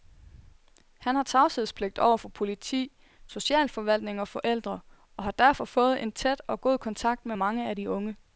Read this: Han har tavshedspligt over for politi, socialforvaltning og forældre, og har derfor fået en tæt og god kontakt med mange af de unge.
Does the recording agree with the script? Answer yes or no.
yes